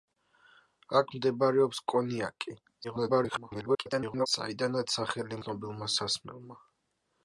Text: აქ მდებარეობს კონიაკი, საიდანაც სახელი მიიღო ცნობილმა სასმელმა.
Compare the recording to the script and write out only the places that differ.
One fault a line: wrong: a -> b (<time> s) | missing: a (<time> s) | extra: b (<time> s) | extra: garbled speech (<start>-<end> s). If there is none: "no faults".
extra: garbled speech (2.8-4.3 s)
missing: მიიღო (5.4 s)